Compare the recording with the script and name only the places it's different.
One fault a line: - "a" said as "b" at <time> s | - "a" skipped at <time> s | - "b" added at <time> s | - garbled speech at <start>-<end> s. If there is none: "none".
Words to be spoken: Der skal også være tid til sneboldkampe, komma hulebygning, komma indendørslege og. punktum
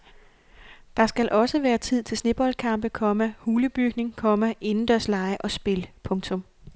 - "spil" added at 5.5 s